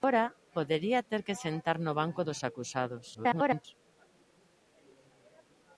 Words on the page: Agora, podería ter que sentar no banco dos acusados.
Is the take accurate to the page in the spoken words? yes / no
no